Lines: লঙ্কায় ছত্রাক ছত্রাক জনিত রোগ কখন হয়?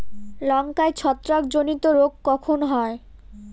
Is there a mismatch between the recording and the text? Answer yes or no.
yes